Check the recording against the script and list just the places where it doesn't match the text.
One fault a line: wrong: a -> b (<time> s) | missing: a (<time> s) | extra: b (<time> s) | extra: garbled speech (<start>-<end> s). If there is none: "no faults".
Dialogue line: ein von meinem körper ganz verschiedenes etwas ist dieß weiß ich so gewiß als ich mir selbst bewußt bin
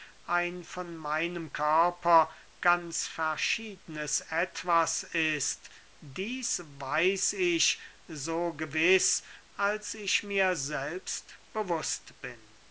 no faults